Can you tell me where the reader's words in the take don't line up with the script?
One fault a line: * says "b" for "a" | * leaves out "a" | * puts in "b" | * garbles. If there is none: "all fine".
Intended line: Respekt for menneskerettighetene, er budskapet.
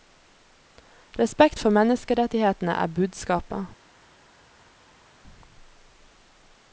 all fine